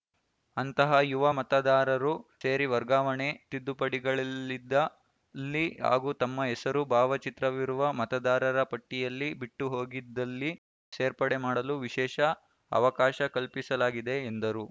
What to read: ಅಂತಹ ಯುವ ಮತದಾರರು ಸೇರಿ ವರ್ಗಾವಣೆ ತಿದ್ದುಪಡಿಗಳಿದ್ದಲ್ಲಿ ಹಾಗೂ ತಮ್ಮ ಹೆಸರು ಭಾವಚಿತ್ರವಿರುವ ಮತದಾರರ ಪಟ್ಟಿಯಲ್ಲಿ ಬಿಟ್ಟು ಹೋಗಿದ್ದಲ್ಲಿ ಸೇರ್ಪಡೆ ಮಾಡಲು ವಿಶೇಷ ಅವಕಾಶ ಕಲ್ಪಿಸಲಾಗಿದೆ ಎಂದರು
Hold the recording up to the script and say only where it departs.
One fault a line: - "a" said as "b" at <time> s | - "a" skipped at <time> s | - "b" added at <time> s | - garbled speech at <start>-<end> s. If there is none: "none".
none